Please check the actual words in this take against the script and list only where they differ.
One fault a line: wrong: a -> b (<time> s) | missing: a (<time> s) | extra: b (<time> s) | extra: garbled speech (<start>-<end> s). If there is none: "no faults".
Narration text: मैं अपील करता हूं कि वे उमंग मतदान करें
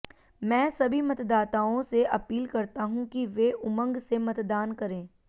extra: सभी मतदाताओं से (0.7 s)
extra: से (4.0 s)